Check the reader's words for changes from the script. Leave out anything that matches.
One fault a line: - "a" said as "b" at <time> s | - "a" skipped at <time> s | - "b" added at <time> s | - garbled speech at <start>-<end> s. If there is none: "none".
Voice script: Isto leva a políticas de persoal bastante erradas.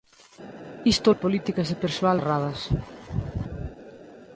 - "leva" skipped at 1.1 s
- "bastante" skipped at 2.2 s